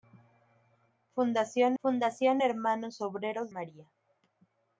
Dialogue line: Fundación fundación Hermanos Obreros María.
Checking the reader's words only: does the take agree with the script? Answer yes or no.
yes